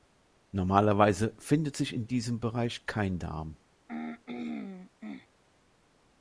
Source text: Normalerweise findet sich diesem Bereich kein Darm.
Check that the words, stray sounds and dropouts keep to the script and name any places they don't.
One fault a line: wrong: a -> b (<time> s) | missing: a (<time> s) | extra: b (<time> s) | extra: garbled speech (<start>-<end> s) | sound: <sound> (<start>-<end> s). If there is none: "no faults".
extra: in (1.9 s)
sound: throat clearing (3.9-5.3 s)